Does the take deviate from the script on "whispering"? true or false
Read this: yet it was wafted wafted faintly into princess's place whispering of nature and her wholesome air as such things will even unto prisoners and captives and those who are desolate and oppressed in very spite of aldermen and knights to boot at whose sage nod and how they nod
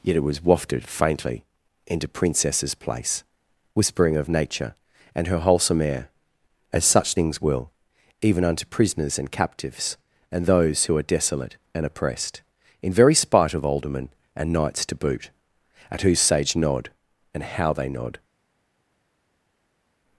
false